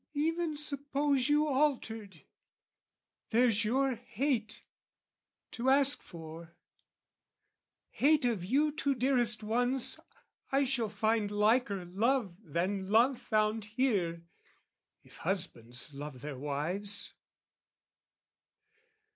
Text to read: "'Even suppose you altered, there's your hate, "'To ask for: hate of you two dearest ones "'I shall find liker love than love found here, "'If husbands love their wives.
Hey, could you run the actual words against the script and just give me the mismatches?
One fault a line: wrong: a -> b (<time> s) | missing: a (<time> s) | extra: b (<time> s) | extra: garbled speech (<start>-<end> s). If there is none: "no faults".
no faults